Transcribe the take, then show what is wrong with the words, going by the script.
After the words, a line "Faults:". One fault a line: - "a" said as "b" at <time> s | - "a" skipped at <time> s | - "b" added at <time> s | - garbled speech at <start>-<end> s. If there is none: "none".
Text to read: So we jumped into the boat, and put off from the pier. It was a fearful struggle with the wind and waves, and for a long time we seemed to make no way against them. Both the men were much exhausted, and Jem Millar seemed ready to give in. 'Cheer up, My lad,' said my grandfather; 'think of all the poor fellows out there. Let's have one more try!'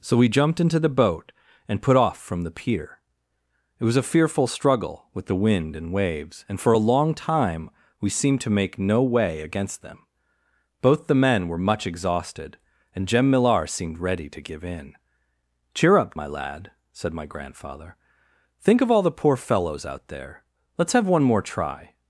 So we jumped into the boat, and put off from the pier. It was a fearful struggle with the wind and waves, and for a long time we seemed to make no way against them. Both the men were much exhausted, and Jem Millar seemed ready to give in. 'Cheer up, My lad,' said my grandfather; 'think of all the poor fellows out there. Let's have one more try!'
Faults:
none